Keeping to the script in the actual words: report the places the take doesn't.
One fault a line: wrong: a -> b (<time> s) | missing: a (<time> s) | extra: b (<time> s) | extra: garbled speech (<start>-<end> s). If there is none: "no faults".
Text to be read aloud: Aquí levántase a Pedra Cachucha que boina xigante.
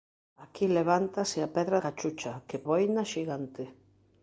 no faults